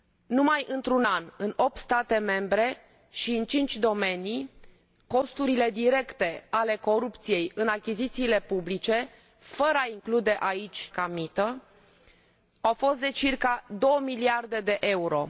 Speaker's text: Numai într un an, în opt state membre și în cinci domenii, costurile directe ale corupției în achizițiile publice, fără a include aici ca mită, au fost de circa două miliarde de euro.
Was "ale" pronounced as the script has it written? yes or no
yes